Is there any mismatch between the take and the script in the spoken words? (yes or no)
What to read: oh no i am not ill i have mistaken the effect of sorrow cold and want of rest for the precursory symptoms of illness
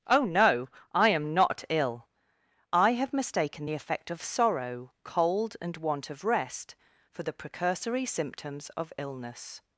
no